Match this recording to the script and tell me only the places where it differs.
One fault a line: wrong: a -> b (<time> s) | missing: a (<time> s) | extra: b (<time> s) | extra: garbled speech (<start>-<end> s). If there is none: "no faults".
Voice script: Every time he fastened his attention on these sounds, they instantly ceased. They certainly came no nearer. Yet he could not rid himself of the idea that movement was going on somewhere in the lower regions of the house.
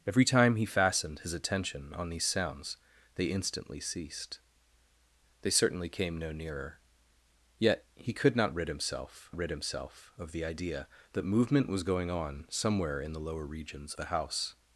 extra: rid himself (9.4 s)
missing: of (13.9 s)